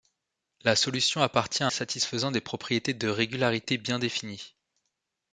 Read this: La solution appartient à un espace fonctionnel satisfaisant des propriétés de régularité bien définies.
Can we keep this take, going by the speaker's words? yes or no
no